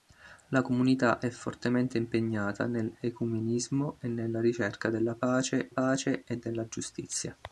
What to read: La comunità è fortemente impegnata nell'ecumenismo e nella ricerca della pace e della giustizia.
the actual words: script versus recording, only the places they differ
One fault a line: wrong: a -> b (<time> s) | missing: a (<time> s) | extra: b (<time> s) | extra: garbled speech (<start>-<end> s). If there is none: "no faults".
extra: pace (5.7 s)